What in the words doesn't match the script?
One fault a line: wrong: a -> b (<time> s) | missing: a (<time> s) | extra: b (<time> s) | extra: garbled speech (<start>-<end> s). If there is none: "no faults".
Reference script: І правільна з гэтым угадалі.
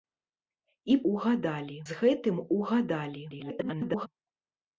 wrong: правільна -> угадалі (1.1 s)
extra: garbled speech (3.3-4.1 s)